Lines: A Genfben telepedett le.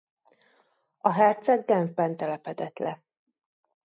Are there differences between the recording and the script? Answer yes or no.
yes